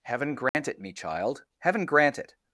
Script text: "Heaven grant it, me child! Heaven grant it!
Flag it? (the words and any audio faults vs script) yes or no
yes